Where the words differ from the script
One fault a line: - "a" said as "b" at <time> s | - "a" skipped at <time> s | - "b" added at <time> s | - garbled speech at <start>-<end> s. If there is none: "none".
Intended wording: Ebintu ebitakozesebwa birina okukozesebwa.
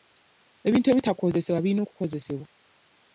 none